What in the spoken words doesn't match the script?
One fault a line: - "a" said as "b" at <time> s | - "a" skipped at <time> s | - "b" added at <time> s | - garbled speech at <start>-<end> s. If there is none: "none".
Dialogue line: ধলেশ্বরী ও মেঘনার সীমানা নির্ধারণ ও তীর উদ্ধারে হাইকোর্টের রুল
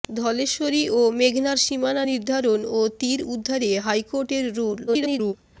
- garbled speech at 4.9-5.3 s